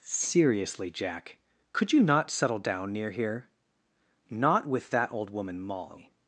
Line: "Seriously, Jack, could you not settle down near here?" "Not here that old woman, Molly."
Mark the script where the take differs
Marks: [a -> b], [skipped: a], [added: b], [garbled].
"Seriously, Jack, could you not settle down near here?" "Not [here -> with] that old woman, Molly."